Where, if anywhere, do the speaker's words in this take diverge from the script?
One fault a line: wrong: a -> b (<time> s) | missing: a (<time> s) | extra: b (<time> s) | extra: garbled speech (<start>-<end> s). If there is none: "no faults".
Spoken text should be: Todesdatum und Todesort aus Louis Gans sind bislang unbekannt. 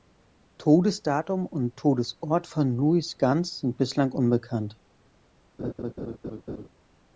wrong: aus -> von (2.5 s)